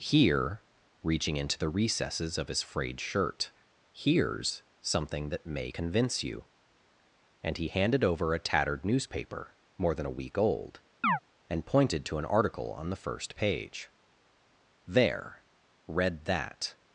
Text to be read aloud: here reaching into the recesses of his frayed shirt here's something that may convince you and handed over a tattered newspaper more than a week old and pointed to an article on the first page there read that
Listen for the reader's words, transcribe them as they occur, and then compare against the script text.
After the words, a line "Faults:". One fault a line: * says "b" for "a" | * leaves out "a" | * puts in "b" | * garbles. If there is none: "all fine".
here reaching into the recesses of his frayed shirt here's something that may convince you and he handed over a tattered newspaper more than a week old and pointed to an article on the first page there read that
Faults:
* puts in "he"